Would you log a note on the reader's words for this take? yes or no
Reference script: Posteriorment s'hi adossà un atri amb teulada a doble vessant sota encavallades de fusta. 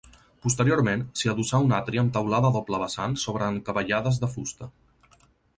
yes